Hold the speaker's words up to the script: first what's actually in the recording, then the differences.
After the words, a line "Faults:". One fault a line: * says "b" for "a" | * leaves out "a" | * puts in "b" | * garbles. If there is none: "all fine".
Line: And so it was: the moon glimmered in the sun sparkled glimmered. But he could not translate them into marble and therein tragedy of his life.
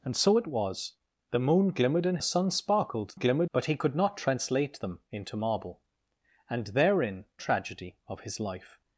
And so it was: the moon glimmered in the sun sparkled glimmered. But he could not translate them into marble and therein tragedy of his life.
Faults:
all fine